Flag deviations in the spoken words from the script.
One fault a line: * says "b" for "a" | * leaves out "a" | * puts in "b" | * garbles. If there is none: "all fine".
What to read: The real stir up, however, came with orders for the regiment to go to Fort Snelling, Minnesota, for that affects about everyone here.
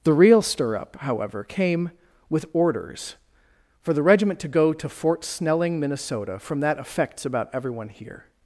* says "from" for "for"